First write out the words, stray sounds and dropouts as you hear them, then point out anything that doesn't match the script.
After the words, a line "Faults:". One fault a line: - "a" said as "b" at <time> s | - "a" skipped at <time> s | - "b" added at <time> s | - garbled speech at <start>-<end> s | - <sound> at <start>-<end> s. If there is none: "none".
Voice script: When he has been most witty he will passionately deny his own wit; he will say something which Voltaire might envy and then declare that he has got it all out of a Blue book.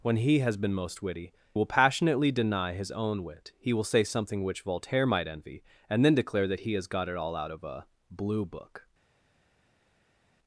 When he has been most witty will passionately deny his own wit; he will say something which Voltaire might envy and then declare that he has got it all out of a Blue book.
Faults:
- "he" skipped at 1.3 s